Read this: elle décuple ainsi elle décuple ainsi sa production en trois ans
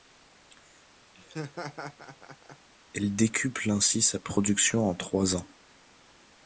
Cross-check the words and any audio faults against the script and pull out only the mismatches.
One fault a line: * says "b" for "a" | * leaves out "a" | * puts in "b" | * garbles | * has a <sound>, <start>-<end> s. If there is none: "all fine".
* has a laugh, 1.1-2.7 s
* leaves out "elle décuple ainsi"